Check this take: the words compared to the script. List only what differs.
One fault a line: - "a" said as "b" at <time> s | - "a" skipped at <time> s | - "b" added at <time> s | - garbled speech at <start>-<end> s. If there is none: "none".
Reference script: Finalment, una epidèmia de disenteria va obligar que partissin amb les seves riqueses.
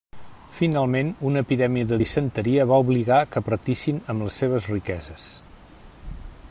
none